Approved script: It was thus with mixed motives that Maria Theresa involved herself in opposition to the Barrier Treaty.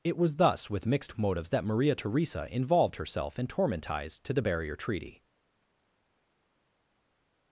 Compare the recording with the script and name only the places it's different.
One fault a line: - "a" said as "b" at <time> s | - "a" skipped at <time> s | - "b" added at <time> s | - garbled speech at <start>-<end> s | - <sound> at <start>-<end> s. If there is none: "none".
- "opposition" said as "tormentize" at 3.5 s